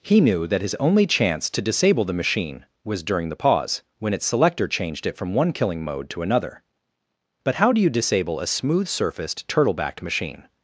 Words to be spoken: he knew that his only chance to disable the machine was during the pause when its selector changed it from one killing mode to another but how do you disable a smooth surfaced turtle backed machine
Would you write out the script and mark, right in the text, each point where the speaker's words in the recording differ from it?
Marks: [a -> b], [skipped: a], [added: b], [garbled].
he knew that his only chance to disable the machine was during the pause when its selector changed it from one killing mode to another but how do you disable a smooth surfaced turtle backed machine